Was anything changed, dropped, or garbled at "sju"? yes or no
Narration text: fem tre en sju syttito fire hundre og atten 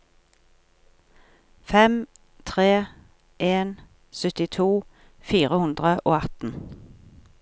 yes